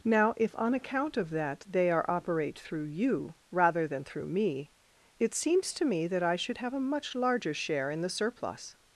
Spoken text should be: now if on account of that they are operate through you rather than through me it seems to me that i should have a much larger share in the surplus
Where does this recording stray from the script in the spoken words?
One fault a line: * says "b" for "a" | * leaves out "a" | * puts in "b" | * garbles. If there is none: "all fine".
all fine